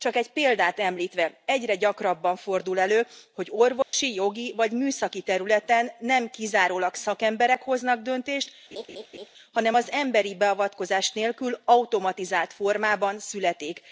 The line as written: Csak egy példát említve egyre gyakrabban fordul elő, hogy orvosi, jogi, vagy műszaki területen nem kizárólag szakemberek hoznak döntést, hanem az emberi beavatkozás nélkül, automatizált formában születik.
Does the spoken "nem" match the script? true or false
true